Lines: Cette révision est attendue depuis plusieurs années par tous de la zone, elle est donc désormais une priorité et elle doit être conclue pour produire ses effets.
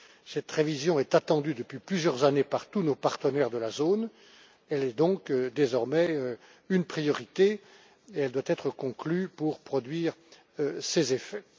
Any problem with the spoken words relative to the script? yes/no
yes